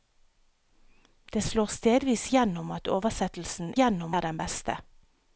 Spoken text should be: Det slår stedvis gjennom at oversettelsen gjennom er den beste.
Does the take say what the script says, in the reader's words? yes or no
yes